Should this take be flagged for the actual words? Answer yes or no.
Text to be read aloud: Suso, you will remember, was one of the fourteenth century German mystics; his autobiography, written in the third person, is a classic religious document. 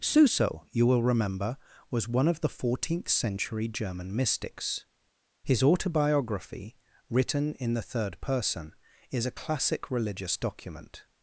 no